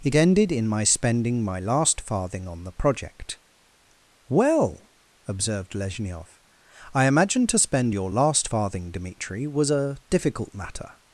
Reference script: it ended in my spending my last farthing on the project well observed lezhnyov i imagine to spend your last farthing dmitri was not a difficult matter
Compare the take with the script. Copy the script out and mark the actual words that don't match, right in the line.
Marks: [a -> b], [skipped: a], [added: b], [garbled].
it ended in my spending my last farthing on the project well observed lezhnyov i imagine to spend your last farthing dmitri was [skipped: not] a difficult matter